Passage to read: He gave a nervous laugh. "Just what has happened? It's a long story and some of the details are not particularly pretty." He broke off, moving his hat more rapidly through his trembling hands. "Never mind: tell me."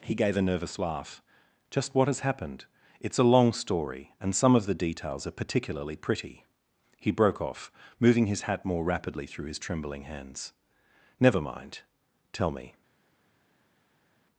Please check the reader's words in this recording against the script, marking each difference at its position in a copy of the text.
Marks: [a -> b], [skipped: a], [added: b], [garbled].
He gave a nervous laugh. "Just what has happened? It's a long story and some of the details are [skipped: not] particularly pretty." He broke off, moving his hat more rapidly through his trembling hands. "Never mind: tell me."